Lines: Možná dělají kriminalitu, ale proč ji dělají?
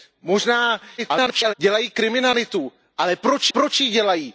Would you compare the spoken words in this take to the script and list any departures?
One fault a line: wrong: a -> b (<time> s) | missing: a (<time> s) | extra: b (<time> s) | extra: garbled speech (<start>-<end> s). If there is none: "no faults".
extra: garbled speech (1.0-1.5 s)
extra: proč (3.5 s)